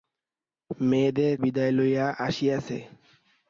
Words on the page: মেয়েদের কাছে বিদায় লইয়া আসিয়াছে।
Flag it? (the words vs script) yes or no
yes